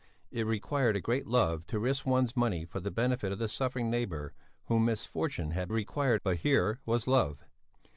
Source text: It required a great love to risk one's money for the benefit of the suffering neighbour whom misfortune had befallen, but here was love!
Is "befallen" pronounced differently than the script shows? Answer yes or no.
yes